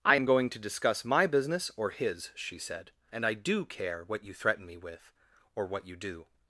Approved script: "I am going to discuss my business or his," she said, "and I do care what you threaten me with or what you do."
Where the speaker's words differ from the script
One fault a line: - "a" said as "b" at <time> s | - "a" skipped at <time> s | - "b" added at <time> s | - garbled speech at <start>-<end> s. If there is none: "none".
none